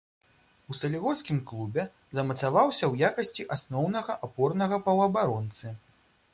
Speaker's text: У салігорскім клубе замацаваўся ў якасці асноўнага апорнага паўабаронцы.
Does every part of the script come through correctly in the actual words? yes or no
yes